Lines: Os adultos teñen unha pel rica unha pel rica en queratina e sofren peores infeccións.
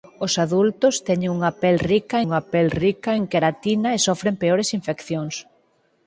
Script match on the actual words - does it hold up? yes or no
yes